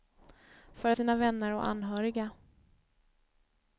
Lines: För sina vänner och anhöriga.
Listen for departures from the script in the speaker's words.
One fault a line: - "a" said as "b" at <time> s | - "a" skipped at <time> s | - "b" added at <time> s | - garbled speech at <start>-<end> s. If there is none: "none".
none